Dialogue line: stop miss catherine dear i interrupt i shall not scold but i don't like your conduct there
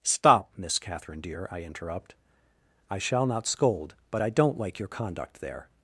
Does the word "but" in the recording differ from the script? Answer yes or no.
no